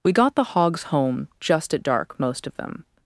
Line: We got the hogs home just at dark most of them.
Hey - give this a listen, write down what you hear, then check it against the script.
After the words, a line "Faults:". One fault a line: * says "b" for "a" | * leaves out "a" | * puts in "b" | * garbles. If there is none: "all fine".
We got the hogs home just at dark most of them.
Faults:
all fine